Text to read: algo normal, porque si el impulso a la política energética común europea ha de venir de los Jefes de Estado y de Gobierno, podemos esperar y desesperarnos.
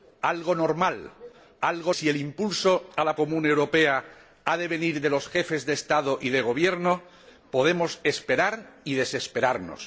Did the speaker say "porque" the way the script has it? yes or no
no